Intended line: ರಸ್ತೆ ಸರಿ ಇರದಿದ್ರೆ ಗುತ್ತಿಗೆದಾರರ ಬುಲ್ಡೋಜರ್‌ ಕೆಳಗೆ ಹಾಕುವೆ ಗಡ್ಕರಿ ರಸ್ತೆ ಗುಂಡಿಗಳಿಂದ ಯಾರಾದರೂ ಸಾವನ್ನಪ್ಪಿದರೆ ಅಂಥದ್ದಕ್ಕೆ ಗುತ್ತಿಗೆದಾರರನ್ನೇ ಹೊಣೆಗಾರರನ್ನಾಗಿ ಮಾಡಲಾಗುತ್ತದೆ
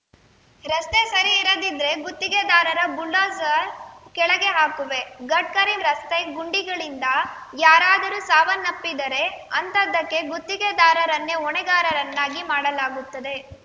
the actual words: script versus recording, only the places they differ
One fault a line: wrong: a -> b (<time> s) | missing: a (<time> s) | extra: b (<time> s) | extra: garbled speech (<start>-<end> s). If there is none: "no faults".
no faults